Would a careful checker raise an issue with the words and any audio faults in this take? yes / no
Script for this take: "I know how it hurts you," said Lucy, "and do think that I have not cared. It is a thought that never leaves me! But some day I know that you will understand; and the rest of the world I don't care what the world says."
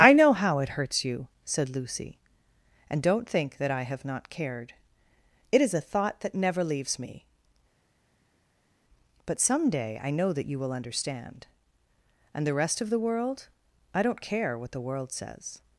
yes